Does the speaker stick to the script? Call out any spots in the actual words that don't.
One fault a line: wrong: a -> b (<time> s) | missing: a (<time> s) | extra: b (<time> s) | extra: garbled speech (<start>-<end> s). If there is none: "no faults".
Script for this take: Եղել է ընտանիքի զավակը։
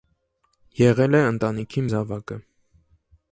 no faults